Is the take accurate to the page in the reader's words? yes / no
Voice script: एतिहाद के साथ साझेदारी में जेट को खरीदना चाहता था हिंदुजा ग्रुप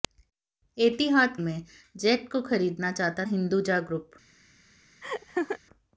no